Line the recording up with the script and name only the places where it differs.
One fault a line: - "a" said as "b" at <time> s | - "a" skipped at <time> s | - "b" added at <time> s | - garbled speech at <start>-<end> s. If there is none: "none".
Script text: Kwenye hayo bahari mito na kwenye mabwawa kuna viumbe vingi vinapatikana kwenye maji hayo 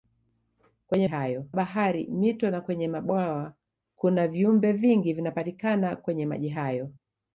none